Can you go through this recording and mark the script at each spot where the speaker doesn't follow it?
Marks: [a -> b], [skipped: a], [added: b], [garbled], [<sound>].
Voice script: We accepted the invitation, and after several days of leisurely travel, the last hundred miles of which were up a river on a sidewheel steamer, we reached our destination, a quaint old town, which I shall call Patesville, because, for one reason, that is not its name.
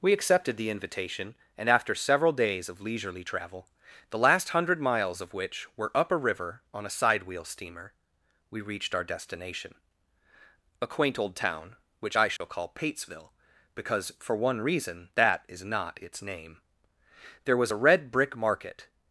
We accepted the invitation, and after several days of leisurely travel, the last hundred miles of which were up a river on a sidewheel steamer, we reached our destination, a quaint old town, which I shall [dropout] call Patesville, because, for one reason, that is not its name. [added: There was a red brick market]